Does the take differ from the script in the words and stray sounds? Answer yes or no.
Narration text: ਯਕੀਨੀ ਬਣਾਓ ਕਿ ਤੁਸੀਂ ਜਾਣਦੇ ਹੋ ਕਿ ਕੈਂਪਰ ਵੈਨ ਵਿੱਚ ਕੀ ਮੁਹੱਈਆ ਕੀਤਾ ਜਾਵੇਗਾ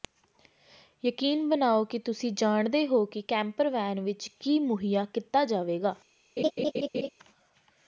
yes